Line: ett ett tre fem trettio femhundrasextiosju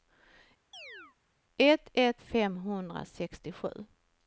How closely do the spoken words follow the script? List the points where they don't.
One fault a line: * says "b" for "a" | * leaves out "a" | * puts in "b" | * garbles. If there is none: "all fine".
* leaves out "tre fem trettio"